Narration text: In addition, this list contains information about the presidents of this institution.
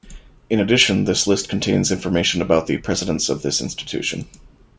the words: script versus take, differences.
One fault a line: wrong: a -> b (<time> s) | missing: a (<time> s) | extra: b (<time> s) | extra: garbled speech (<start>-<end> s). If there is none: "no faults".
no faults